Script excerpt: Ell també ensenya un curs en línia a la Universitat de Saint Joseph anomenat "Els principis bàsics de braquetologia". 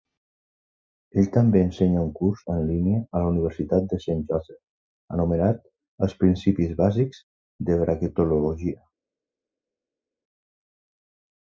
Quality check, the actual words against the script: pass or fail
pass